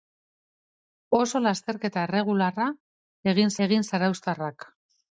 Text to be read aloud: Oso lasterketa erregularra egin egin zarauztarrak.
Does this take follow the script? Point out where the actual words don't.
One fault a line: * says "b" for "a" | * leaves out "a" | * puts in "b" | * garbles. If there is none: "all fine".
all fine